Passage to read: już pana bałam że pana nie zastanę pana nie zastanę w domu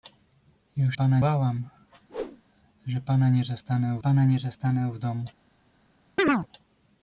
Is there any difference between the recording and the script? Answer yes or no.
no